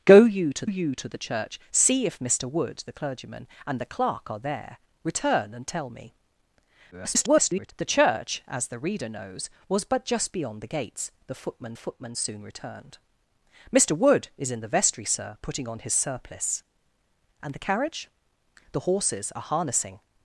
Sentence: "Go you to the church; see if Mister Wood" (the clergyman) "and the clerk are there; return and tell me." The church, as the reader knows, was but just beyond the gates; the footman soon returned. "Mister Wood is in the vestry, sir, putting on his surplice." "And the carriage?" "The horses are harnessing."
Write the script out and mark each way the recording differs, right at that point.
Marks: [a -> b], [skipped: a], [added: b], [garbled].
"Go you to [added: you to] the church; see if Mister Wood" (the clergyman) "and the clerk are there; return and tell me." [garbled] The church, as the reader knows, was but just beyond the gates; the footman [added: footman] soon returned. "Mister Wood is in the vestry, sir, putting on his surplice." "And the carriage?" "The horses are harnessing."